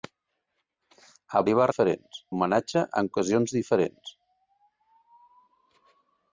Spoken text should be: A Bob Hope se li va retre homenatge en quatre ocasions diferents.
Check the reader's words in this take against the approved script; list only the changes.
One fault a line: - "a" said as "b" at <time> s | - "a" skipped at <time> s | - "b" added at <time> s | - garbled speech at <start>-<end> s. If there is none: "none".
- "Bob Hope se" skipped at 1.4 s
- "retre" said as "diferents" at 1.7 s
- "quatre" skipped at 3.1 s